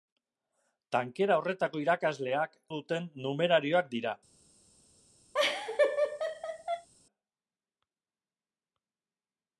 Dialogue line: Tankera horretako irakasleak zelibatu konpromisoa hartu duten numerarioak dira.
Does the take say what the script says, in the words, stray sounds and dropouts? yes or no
no